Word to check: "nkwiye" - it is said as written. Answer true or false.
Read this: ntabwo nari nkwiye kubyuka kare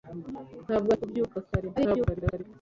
false